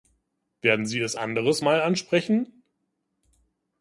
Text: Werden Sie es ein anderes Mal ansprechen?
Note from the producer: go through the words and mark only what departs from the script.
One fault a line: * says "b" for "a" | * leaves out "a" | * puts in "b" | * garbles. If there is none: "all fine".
* leaves out "ein"